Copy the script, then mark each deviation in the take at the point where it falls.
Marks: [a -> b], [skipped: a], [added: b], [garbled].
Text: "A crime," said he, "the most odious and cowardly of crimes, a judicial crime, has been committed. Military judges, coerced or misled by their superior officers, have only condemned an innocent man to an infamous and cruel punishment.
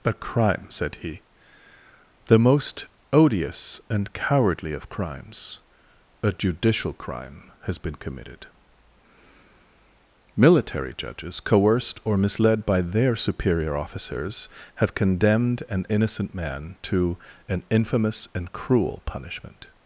"A crime," said he, "the most odious and cowardly of crimes, a judicial crime, has been committed. Military judges, coerced or misled by their superior officers, have [skipped: only] condemned an innocent man to an infamous and cruel punishment.